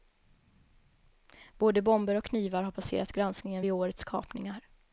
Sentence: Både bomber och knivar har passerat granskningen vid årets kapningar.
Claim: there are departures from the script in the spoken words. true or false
false